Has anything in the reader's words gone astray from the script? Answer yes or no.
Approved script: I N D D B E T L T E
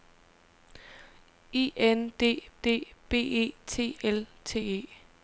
no